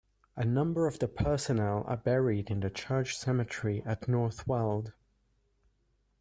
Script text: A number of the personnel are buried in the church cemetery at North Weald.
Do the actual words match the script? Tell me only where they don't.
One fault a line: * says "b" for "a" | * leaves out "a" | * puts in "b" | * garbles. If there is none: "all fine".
all fine